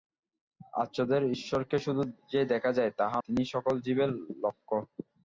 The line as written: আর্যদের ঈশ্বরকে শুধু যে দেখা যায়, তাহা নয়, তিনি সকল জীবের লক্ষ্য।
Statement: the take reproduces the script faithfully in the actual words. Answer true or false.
false